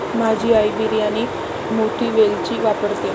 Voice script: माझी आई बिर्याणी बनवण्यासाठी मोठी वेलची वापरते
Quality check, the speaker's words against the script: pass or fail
fail